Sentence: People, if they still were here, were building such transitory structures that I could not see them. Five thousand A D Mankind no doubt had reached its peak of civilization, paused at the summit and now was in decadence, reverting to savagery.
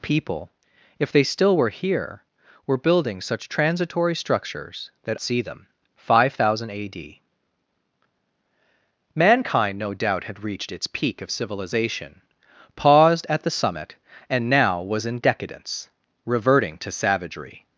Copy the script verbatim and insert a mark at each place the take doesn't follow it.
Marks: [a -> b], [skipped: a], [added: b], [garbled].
People, if they still were here, were building such transitory structures that [skipped: I could not] see them. Five thousand A D Mankind no doubt had reached its peak of civilization, paused at the summit and now was in decadence, reverting to savagery.